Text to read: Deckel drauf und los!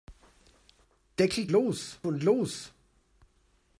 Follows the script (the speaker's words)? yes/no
no